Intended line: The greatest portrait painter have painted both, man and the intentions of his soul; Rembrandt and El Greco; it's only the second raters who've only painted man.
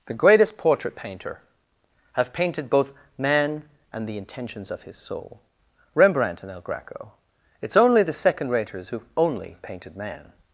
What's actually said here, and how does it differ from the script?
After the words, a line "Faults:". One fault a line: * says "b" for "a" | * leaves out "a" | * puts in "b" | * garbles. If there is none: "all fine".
The greatest portrait painter have painted both, man and the intentions of his soul; Rembrandt and El Greco; it's only the second raters who've only painted man.
Faults:
all fine